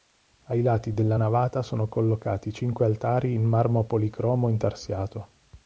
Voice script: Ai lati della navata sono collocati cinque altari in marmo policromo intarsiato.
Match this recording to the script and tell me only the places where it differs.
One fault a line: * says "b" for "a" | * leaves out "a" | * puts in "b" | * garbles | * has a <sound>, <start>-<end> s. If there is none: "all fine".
all fine